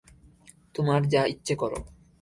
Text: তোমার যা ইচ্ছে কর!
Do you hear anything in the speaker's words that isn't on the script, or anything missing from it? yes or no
no